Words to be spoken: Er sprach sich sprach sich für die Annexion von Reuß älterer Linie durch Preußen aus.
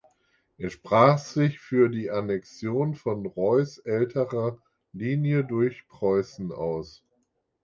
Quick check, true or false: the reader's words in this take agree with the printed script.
false